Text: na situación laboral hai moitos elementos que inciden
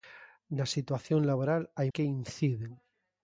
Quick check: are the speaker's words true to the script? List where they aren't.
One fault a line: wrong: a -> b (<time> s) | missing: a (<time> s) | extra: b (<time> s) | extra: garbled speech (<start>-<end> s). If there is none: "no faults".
missing: moitos elementos (1.9 s)